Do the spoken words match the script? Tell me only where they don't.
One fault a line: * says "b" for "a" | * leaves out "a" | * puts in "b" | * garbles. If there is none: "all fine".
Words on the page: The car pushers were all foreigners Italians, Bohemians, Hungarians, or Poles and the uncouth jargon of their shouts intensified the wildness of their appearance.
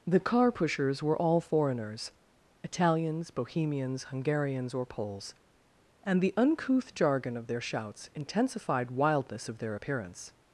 * leaves out "the"